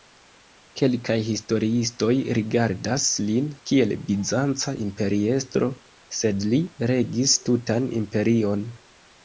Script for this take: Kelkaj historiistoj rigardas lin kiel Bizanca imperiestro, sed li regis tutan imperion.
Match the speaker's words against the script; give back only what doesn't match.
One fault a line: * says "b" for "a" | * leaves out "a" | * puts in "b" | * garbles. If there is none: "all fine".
all fine